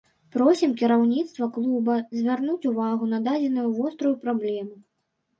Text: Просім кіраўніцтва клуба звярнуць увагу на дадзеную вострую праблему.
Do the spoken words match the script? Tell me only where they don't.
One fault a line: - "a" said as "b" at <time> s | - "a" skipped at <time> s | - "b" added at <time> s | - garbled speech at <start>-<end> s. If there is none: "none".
none